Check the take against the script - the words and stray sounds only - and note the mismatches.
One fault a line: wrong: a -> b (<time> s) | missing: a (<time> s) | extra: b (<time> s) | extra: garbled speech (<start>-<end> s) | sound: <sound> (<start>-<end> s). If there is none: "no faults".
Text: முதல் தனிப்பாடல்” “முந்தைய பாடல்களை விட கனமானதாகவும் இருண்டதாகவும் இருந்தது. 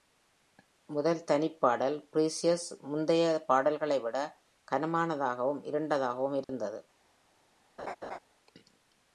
extra: Precious (2.1 s)
sound: dropout (6.4-6.5 s)
sound: laugh (7.8-8.2 s)